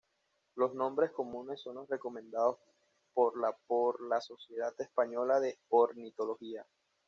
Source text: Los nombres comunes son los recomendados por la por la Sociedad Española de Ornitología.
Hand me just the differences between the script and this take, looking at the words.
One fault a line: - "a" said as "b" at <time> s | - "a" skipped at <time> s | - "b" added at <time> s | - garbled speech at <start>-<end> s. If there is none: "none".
none